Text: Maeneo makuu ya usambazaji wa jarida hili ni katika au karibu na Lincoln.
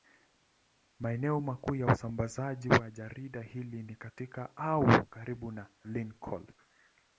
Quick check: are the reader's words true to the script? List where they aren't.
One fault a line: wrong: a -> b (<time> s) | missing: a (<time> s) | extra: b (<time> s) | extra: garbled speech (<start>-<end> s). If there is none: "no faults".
no faults